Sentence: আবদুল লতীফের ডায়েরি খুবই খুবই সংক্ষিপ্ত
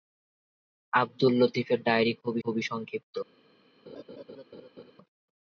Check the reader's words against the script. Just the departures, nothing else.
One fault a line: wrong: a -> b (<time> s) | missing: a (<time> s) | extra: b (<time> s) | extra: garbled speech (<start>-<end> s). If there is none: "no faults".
no faults